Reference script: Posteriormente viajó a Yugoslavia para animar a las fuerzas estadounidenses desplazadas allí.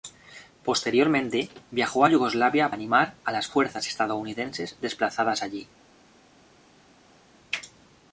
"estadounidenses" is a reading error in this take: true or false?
false